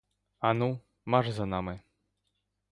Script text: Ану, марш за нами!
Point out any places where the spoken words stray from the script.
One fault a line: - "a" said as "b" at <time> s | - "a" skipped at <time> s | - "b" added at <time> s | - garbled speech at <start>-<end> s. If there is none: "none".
none